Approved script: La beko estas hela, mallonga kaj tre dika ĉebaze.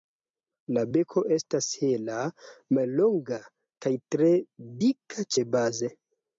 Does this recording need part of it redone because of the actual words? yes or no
no